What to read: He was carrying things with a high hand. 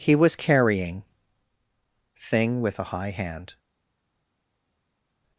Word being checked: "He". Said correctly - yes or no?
yes